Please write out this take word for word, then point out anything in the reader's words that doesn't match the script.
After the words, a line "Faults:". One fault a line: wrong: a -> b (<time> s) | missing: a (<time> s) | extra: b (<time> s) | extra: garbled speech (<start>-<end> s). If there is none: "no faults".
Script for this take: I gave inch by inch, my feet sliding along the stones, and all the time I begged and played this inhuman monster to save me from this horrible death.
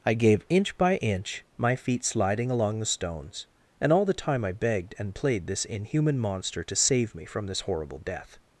I gave inch by inch, my feet sliding along the stones, and all the time I begged and played this inhuman monster to save me from this horrible death.
Faults:
no faults